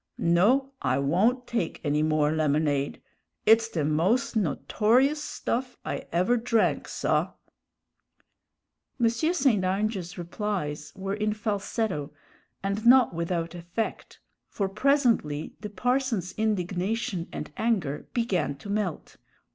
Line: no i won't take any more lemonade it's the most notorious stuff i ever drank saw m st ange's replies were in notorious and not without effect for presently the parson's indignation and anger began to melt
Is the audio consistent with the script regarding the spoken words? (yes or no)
no